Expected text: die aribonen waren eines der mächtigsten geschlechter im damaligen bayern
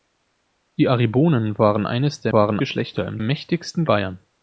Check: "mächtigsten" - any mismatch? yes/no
yes